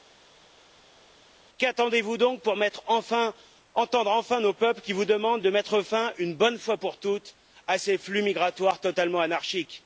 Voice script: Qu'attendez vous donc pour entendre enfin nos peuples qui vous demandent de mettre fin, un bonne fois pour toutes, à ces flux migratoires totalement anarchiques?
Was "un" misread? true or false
true